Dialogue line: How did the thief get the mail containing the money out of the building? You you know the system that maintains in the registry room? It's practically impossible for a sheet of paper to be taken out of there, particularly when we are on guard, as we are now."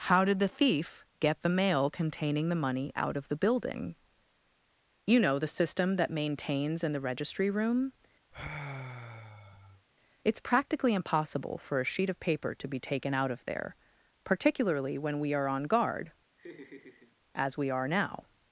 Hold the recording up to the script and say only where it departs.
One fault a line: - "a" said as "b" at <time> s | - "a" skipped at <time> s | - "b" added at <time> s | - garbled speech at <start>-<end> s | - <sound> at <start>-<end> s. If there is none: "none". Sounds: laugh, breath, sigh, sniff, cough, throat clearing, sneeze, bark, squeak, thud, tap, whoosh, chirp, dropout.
- "you" skipped at 5.2 s
- sigh at 8.3-9.9 s
- laugh at 16.4-17.2 s